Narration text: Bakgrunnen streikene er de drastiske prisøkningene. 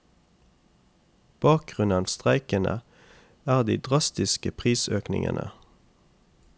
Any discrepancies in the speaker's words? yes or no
no